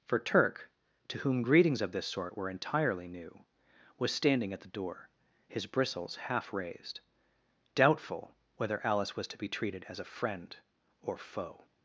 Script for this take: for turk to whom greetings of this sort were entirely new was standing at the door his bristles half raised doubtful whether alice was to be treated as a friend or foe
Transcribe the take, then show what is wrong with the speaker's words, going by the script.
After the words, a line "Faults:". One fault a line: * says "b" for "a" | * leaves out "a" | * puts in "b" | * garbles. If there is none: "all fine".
for turk to whom greetings of this sort were entirely new was standing at the door his bristles half raised doubtful whether alice was to be treated as a friend or foe
Faults:
all fine